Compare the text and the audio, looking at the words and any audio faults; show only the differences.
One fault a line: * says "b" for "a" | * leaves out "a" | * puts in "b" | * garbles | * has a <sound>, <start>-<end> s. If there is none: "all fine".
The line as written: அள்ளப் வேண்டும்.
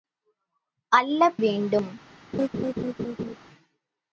* has a laugh, 2.3-3.4 s